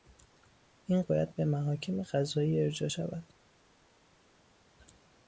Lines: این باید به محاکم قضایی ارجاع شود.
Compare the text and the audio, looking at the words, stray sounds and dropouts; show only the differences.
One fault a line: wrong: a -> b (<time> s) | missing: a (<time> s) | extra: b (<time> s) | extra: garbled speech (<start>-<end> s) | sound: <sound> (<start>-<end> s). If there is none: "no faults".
no faults